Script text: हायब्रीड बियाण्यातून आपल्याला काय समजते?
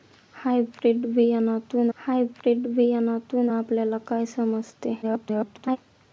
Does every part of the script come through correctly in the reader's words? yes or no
no